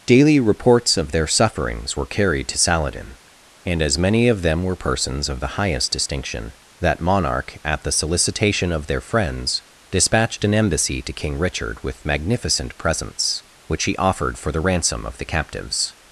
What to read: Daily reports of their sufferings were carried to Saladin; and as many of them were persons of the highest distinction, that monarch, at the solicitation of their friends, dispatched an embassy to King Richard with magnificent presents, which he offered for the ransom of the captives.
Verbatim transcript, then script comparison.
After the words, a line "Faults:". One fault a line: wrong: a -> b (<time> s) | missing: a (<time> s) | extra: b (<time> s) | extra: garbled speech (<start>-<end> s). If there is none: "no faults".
Daily reports of their sufferings were carried to Saladin; and as many of them were persons of the highest distinction, that monarch, at the solicitation of their friends, dispatched an embassy to King Richard with magnificent presents, which he offered for the ransom of the captives.
Faults:
no faults